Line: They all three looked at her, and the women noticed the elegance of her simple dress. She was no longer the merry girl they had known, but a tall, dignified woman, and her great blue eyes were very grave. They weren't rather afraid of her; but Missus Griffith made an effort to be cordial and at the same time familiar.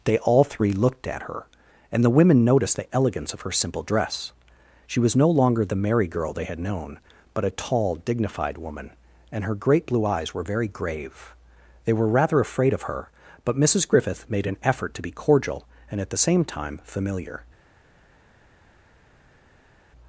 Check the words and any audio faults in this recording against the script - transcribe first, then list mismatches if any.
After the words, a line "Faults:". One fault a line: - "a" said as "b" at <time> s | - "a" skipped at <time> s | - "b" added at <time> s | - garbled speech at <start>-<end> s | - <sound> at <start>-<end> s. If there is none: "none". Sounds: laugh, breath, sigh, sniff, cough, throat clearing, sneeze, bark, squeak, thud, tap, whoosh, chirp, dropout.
They all three looked at her, and the women noticed the elegance of her simple dress. She was no longer the merry girl they had known, but a tall, dignified woman, and her great blue eyes were very grave. They were rather afraid of her; but Missus Griffith made an effort to be cordial and at the same time familiar.
Faults:
- "weren't" said as "were" at 11.9 s